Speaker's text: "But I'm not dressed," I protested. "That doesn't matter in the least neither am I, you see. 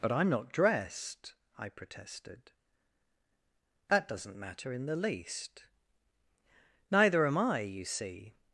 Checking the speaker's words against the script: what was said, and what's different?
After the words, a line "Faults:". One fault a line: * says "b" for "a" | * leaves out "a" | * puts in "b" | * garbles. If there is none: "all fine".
"But I'm not dressed," I protested. "That doesn't matter in the least neither am I, you see.
Faults:
all fine